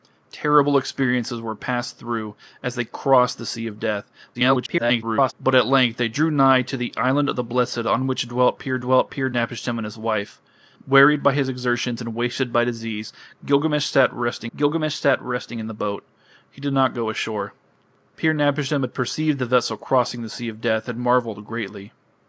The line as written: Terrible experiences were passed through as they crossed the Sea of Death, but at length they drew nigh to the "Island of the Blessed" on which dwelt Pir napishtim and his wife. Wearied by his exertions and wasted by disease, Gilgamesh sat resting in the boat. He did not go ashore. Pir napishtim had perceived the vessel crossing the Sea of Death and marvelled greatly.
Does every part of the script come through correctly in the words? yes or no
no